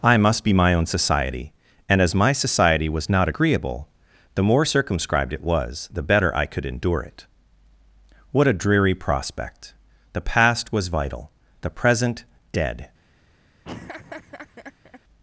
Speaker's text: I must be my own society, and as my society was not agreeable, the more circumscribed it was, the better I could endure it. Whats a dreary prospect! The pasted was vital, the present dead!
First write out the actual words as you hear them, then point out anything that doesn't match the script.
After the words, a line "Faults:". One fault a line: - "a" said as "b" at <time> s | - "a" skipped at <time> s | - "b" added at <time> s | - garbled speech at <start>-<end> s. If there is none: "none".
I must be my own society, and as my society was not agreeable, the more circumscribed it was, the better I could endure it. What a dreary prospect! The past was vital, the present dead!
Faults:
- "Whats" said as "What" at 8.3 s
- "pasted" said as "past" at 10.2 s